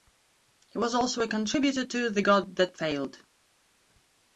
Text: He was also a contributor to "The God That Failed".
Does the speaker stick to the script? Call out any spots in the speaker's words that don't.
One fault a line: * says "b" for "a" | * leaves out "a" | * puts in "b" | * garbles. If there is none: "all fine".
all fine